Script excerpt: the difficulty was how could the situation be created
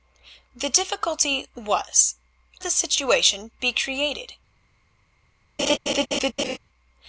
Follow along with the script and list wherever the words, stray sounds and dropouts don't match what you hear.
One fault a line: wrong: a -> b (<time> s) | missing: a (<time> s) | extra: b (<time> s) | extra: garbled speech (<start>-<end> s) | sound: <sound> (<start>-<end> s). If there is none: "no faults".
missing: how could (2.1 s)
sound: laugh (5.6-6.6 s)